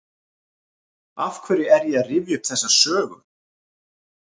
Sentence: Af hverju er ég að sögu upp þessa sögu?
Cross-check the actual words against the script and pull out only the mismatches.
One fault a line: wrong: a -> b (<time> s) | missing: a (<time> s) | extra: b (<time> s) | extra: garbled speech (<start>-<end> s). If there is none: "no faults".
wrong: sögu -> rifja (2.1 s)